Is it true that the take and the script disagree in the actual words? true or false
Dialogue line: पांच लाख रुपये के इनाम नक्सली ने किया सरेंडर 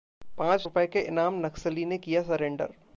true